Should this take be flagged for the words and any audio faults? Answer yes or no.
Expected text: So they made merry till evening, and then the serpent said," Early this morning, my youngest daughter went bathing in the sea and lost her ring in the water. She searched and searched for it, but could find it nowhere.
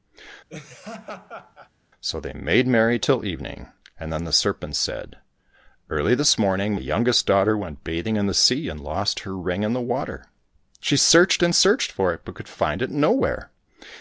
yes